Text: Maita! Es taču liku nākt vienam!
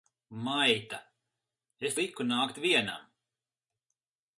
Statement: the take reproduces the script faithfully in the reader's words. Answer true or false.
false